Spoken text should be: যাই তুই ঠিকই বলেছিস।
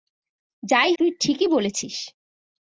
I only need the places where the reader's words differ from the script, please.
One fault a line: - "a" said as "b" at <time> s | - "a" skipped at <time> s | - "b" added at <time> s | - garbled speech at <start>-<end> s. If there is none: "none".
none